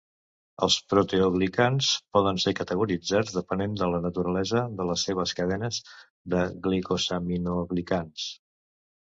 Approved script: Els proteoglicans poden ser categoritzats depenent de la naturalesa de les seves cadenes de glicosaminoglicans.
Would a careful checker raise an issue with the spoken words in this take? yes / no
no